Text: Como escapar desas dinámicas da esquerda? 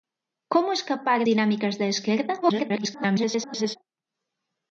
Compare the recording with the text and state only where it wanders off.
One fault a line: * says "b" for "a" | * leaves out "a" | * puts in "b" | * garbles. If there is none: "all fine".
* leaves out "desas"
* garbles